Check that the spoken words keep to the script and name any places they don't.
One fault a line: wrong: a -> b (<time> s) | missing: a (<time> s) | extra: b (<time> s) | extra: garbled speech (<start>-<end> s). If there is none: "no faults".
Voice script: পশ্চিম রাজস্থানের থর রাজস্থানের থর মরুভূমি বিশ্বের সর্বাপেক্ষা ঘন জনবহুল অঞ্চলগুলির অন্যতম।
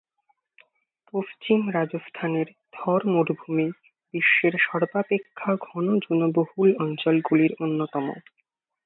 missing: রাজস্থানের থর (3.0 s)